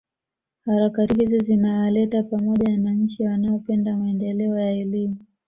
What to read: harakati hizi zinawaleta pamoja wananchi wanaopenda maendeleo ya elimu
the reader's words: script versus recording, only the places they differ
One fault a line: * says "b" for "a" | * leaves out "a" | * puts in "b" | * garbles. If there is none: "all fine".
all fine